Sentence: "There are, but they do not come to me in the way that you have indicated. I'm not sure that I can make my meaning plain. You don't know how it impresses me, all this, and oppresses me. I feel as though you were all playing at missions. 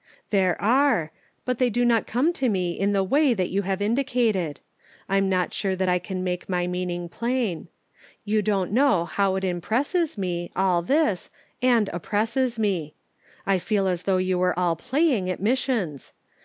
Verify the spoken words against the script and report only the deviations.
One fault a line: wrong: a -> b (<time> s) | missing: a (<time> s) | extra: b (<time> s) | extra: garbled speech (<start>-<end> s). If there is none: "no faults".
no faults